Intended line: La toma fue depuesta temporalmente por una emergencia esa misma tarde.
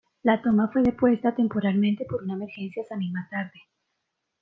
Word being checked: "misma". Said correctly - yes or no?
yes